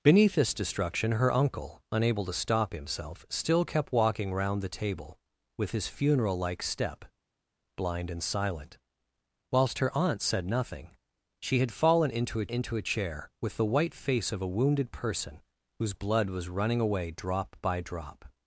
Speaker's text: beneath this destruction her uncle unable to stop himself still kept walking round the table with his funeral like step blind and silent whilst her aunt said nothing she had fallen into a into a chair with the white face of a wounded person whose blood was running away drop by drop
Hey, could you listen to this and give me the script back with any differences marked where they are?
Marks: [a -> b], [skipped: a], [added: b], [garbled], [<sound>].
beneath this destruction her uncle unable to stop himself still kept walking round the table with his funeral like step blind and silent whilst her aunt said nothing she had fallen into a into a chair with the white face of a wounded person whose blood was running away drop by drop